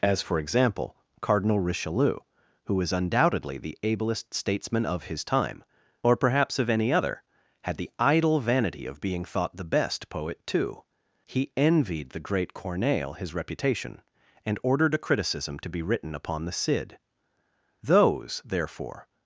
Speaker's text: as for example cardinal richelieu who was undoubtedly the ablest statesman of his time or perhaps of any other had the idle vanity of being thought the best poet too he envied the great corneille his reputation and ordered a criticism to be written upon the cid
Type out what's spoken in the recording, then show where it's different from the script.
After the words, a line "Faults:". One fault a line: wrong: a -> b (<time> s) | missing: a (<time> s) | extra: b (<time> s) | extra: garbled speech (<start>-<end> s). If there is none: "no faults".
as for example cardinal richelieu who was undoubtedly the ablest statesman of his time or perhaps of any other had the idle vanity of being thought the best poet too he envied the great corneille his reputation and ordered a criticism to be written upon the cid those therefore
Faults:
extra: those therefore (17.8 s)